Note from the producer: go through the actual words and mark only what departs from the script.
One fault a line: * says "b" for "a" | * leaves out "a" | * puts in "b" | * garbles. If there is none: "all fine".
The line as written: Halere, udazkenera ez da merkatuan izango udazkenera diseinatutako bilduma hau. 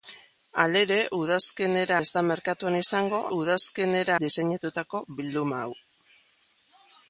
all fine